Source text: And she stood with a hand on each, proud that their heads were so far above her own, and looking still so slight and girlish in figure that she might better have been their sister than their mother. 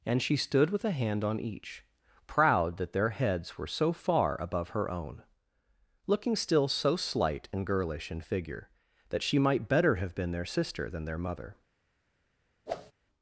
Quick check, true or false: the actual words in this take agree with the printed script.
false